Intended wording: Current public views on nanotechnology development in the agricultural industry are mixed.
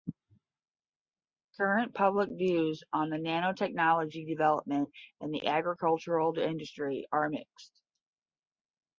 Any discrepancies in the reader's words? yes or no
no